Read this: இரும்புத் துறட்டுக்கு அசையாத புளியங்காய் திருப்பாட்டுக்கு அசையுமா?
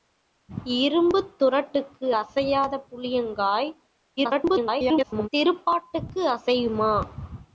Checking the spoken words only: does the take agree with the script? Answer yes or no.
no